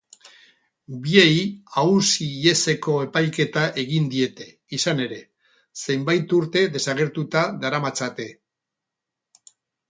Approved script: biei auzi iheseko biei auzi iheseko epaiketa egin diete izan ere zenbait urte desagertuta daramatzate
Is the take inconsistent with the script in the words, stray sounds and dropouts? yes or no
yes